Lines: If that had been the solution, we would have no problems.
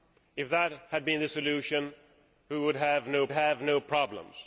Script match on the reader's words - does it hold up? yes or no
no